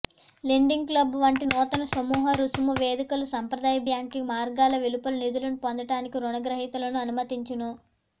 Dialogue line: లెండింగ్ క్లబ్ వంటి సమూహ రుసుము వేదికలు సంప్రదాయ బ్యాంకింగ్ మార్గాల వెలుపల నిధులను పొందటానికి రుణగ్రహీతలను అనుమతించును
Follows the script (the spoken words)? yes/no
no